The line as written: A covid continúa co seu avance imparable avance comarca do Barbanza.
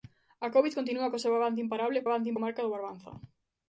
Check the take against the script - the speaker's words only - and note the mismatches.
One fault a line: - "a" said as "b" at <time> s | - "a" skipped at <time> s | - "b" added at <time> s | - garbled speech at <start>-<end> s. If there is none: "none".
none